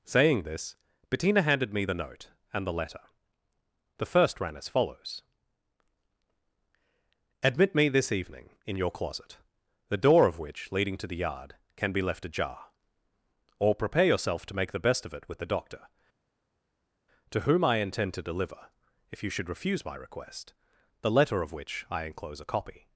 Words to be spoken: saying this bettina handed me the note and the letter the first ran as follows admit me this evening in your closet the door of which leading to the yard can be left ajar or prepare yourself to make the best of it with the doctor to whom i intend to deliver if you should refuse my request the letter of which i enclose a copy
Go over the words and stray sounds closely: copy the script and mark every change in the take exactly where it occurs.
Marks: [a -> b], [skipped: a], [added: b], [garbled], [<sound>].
saying this bettina handed me the note and the letter the first ran as follows admit me this evening in your closet the door of which leading to the yard can be left ajar or prepare yourself to make the best of it with the doctor to whom i intend to deliver if you should refuse my request the letter of which i enclose a copy